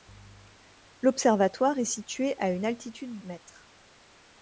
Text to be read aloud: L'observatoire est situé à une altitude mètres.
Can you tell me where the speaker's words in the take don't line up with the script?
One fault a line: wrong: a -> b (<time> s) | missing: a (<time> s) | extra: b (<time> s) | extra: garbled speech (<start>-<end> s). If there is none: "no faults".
no faults